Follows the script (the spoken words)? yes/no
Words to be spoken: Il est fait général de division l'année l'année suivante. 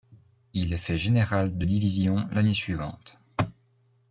no